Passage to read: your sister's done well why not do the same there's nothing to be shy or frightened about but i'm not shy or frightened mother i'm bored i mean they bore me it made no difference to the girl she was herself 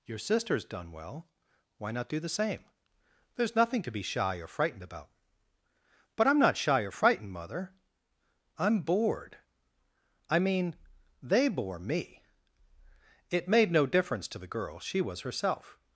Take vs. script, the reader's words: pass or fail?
pass